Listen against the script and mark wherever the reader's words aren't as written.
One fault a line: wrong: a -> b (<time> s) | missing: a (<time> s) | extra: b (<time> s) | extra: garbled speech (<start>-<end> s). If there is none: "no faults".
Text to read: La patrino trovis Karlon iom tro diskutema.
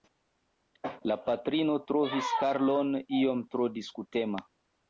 no faults